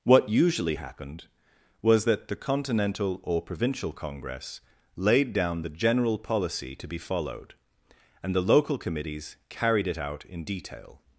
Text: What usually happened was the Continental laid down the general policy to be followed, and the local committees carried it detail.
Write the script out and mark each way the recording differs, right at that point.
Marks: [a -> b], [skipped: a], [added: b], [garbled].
What usually happened was [added: that] the Continental [added: or provincial Congress] laid down the general policy to be followed, and the local committees carried it [added: out in] detail.